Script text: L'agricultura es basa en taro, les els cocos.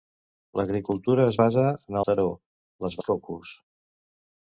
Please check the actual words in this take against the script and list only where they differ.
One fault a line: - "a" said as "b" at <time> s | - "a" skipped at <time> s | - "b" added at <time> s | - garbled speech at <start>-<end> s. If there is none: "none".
none